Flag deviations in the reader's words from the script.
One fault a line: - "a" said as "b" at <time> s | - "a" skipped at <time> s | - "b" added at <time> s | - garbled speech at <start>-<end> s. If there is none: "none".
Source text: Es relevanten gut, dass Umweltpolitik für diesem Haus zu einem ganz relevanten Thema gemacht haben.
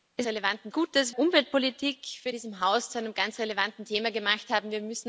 none